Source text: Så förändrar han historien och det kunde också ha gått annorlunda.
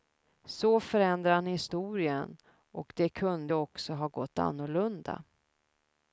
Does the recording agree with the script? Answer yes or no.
yes